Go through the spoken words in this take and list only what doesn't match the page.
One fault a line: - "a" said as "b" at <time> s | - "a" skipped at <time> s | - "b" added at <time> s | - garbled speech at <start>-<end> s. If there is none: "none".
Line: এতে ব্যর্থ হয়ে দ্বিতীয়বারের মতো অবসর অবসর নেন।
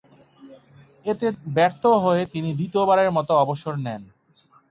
- "তিনি" added at 2.3 s
- "অবসর" skipped at 3.7 s